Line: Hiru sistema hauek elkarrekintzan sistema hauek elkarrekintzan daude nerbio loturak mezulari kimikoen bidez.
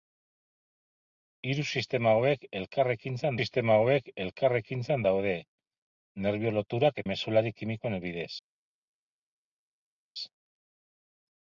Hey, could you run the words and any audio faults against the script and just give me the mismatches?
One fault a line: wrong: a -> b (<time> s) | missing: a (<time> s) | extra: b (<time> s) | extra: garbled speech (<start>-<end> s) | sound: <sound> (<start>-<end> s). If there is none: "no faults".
no faults